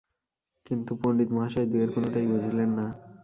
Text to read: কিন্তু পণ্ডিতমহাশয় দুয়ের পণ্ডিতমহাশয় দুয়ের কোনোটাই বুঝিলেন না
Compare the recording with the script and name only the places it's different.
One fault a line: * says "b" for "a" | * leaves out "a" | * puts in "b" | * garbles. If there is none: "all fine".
* leaves out "পণ্ডিতমহাশয় দুয়ের"